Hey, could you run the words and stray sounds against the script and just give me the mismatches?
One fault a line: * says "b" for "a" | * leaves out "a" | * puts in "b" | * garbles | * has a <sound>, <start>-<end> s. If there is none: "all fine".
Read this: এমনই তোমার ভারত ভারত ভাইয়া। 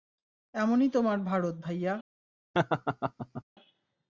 * leaves out "ভারত"
* has a laugh, 2.5-3.4 s